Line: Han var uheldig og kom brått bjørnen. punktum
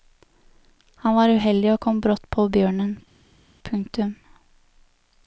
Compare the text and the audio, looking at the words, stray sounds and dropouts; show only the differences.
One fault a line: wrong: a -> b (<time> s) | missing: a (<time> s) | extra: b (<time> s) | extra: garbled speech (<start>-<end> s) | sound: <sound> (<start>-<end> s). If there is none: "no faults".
extra: på (2.4 s)